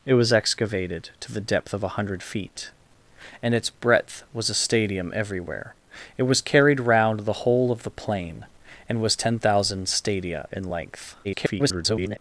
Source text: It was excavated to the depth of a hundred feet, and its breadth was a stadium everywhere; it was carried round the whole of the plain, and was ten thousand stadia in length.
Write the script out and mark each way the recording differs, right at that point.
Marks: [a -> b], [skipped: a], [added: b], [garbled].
It was excavated to the depth of a hundred feet, and its breadth was a stadium everywhere; it was carried round the whole of the plain, and was ten thousand stadia in length. [garbled]